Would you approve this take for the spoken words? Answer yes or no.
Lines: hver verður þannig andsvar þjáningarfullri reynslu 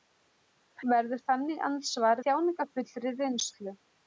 yes